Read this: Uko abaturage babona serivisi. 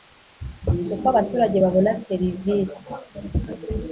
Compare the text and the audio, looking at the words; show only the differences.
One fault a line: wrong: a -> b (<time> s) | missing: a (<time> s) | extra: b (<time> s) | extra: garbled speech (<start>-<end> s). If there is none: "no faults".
no faults